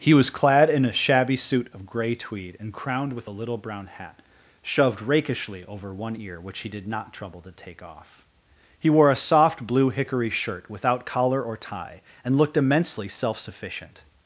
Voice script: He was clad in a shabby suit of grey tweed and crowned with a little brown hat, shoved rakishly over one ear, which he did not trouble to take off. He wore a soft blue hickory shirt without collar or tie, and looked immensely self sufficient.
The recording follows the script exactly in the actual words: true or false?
true